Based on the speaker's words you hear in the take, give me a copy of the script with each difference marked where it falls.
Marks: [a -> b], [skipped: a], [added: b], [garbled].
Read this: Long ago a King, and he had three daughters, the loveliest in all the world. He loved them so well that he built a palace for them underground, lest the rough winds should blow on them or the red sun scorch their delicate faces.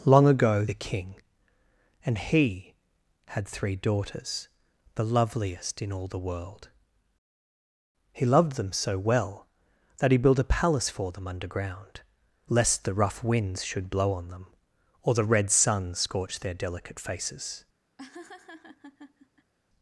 Long ago a King, and he had three daughters, the loveliest in all the world. He loved them so well that he built a palace for them underground, lest the rough winds should blow on them or the red sun scorch their delicate faces.